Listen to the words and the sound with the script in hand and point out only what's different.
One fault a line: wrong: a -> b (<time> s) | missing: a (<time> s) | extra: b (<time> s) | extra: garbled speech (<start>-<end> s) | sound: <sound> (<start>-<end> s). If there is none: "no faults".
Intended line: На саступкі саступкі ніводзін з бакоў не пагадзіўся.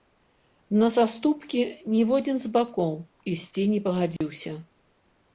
missing: саступкі (1.6 s)
extra: ісці (3.3 s)
sound: dropout (4.2-4.2 s)